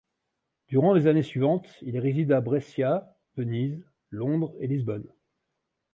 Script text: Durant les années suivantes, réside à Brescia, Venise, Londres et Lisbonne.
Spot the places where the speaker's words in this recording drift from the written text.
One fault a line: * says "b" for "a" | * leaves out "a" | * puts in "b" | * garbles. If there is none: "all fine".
* puts in "il"